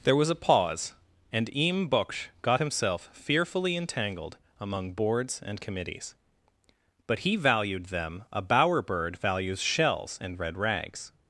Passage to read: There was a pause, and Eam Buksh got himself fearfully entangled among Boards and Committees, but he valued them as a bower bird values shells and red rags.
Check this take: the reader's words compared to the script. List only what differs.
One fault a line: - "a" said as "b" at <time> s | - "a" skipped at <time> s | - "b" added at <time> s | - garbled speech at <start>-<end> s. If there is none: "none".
- "as" skipped at 8.2 s